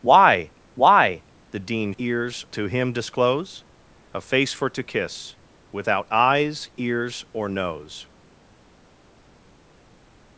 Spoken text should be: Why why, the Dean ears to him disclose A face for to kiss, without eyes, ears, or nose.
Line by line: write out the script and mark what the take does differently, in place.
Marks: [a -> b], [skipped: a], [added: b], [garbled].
Why why, the Dean ears to him disclose A face for to kiss, without eyes, ears, or nose.